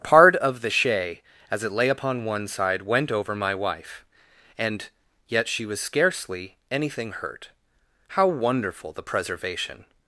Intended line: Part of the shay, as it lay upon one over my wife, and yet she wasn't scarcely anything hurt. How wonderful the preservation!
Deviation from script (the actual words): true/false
true